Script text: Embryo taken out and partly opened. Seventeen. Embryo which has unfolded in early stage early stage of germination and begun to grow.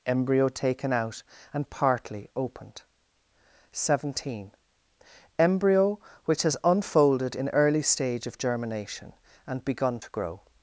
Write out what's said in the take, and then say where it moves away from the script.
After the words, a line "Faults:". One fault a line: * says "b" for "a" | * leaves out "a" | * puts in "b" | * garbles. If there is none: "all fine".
Embryo taken out and partly opened. Seventeen. Embryo which has unfolded in early stage of germination and begun to grow.
Faults:
* leaves out "early stage"